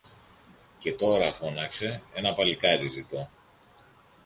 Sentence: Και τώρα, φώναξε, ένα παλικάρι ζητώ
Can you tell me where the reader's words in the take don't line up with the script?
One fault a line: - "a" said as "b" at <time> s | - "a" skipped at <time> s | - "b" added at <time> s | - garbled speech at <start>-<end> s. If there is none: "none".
none